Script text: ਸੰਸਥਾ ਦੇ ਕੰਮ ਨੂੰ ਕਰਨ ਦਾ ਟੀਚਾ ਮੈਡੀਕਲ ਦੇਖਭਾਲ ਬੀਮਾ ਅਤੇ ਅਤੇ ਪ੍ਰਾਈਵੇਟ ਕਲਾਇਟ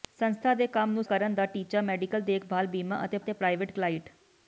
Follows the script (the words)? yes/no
yes